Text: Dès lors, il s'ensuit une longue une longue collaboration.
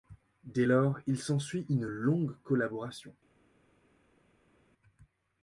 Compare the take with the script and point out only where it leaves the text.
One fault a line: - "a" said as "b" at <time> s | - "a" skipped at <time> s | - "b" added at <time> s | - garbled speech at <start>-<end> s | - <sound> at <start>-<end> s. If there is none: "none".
- "une longue" skipped at 2.4 s